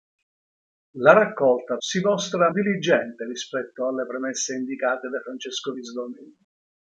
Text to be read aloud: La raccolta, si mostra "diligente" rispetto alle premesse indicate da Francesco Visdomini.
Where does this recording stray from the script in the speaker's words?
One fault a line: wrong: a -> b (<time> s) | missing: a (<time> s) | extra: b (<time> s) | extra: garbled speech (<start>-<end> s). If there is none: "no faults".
no faults